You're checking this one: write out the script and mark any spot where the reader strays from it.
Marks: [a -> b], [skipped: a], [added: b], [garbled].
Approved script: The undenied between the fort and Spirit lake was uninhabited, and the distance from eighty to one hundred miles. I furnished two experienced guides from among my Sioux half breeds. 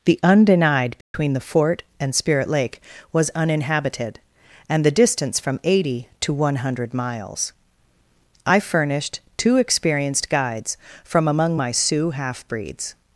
The undenied between the fort and Spirit lake was uninhabited, and the distance from eighty to one hundred miles. I furnished two experienced guides from among my Sioux half breeds.